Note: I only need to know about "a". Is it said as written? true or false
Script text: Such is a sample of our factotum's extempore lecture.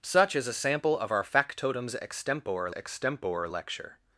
true